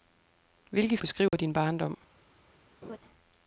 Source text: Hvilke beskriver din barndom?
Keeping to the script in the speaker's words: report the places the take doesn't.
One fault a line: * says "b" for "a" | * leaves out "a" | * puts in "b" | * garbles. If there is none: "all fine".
all fine